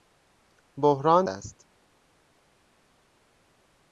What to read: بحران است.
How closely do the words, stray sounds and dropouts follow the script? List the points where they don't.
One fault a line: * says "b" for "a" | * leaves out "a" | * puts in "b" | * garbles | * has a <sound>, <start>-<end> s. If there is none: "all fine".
all fine